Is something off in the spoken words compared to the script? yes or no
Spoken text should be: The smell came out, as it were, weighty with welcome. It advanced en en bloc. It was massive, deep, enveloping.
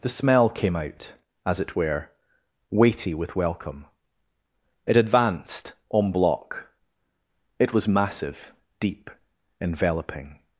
yes